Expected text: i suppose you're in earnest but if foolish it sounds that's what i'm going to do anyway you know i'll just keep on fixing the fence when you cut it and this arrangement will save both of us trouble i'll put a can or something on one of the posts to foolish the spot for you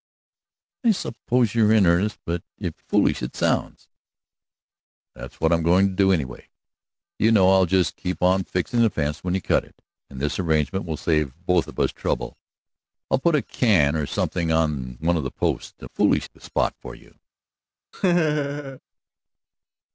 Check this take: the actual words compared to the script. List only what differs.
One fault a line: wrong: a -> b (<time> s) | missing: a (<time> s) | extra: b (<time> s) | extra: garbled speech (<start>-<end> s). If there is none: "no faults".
no faults